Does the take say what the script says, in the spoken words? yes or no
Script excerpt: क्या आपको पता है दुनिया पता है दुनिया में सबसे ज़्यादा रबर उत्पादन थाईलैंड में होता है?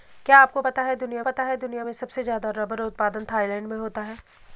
yes